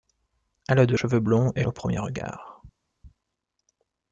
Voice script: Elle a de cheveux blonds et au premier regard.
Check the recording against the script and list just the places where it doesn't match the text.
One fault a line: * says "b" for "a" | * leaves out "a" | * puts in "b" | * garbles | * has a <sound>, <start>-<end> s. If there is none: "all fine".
all fine